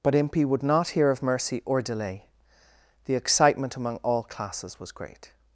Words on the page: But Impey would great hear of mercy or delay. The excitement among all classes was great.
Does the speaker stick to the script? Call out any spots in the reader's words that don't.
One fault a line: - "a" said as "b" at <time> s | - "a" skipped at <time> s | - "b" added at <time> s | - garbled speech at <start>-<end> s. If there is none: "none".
- "great" said as "not" at 0.6 s